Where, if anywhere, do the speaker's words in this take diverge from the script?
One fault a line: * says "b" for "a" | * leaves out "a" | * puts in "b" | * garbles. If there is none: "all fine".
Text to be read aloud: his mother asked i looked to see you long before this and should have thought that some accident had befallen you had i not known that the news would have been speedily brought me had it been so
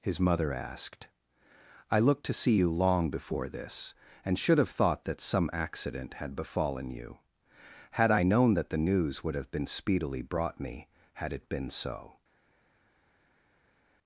* leaves out "not"